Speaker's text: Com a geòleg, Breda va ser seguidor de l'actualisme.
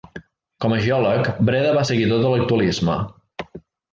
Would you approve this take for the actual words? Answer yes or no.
no